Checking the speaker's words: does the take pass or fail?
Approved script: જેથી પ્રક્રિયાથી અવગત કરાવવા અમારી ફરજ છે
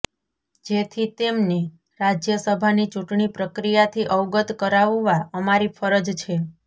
fail